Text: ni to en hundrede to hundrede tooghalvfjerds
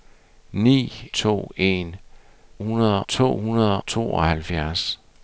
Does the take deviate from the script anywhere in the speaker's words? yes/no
no